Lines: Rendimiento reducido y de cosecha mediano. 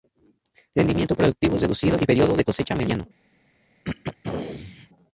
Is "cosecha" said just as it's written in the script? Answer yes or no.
yes